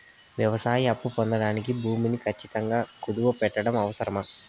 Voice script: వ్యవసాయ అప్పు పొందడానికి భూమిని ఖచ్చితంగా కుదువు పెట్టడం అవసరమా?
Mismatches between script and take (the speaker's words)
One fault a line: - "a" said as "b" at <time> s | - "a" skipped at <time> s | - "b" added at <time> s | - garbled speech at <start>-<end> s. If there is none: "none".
none